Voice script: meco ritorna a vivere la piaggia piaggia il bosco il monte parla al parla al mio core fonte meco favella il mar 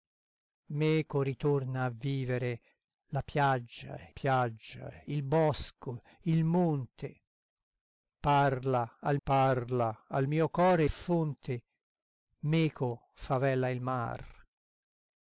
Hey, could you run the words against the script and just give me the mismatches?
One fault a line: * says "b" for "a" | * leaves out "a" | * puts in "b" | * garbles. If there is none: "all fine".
all fine